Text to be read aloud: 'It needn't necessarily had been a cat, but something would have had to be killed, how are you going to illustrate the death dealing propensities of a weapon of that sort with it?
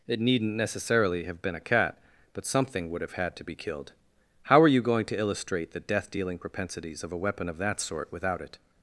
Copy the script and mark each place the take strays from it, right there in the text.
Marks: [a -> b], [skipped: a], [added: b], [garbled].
'It needn't necessarily [had -> have] been a cat, but something would have had to be killed, how are you going to illustrate the death dealing propensities of a weapon of that sort [with -> without] it?